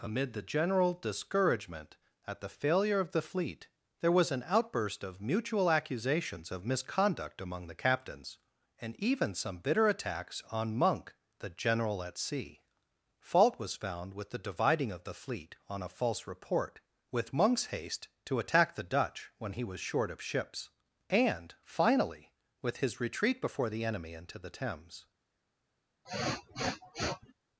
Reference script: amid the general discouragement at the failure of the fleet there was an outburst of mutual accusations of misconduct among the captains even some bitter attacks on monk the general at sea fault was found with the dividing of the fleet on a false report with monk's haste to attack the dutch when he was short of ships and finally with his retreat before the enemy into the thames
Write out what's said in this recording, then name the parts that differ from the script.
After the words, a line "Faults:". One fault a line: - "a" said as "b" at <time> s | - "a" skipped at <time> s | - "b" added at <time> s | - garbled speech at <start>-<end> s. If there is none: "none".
amid the general discouragement at the failure of the fleet there was an outburst of mutual accusations of misconduct among the captains and even some bitter attacks on monk the general at sea fault was found with the dividing of the fleet on a false report with monk's haste to attack the dutch when he was short of ships and finally with his retreat before the enemy into the thames
Faults:
- "and" added at 8.8 s